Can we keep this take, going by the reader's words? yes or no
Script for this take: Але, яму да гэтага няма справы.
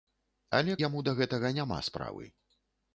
yes